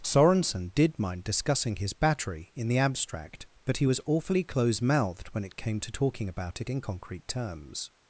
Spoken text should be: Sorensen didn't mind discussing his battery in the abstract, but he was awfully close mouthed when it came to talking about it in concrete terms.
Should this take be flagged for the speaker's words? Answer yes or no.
yes